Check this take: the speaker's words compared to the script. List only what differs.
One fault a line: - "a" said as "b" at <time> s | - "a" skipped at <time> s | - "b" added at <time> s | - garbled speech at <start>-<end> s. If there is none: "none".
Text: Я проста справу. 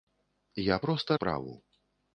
none